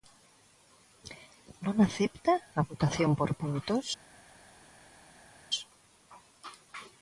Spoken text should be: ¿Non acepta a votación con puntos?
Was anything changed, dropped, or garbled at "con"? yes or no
yes